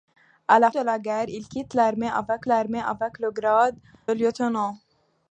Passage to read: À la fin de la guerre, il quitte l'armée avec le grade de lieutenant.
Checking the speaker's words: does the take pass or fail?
fail